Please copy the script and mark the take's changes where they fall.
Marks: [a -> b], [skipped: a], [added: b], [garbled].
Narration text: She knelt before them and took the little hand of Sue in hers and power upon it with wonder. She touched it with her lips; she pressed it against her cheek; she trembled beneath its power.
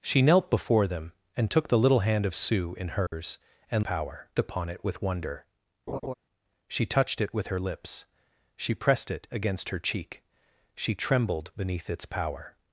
She knelt before them and took the little hand of Sue in hers and power upon it with wonder. She touched it with her lips; she pressed it against her cheek; she trembled beneath its power.